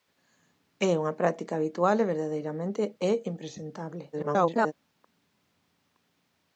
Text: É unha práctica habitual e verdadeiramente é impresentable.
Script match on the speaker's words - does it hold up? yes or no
no